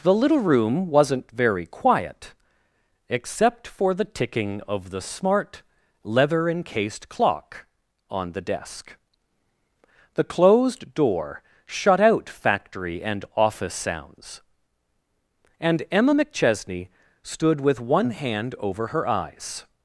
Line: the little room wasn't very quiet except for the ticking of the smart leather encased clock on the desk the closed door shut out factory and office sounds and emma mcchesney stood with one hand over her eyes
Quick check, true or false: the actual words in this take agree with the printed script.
true